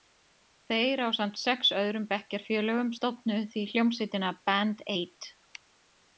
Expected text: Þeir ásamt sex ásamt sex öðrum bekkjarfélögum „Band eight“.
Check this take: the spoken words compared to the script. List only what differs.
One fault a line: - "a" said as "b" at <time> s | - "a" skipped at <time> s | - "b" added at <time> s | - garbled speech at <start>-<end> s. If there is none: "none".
- "ásamt sex öðrum bekkjarfélögum" said as "öðrum bekkjarfélögum stofnuðu því hljómsveitina" at 1.8 s